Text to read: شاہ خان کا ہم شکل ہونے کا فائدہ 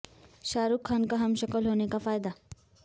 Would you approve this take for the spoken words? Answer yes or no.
no